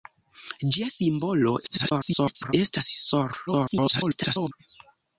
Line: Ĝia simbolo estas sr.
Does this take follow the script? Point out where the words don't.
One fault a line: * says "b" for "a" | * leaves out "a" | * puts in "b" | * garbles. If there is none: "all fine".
* garbles
* garbles